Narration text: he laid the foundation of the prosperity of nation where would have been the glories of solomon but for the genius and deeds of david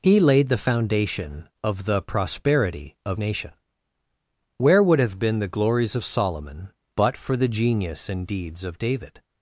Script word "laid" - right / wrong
right